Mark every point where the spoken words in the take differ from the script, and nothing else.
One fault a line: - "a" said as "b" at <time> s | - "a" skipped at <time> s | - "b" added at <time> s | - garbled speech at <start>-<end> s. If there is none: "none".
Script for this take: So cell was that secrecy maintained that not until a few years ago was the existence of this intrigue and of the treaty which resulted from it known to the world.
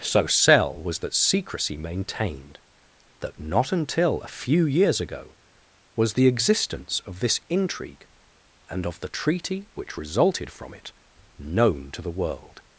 none